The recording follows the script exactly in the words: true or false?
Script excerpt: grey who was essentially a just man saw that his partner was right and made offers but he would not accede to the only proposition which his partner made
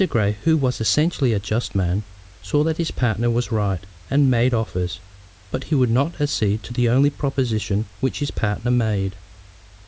true